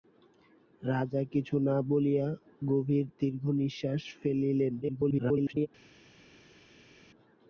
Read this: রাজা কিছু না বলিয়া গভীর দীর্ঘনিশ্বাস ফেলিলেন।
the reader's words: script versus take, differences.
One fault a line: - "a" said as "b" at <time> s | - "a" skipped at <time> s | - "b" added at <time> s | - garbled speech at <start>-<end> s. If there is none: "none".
- garbled speech at 4.8-5.7 s